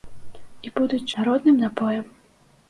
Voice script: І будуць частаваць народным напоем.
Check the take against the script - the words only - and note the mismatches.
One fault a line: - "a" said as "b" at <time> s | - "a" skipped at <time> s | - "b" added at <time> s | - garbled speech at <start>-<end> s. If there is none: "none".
- "частаваць" skipped at 1.1 s